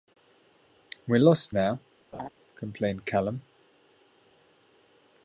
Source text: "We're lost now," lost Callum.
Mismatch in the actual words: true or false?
true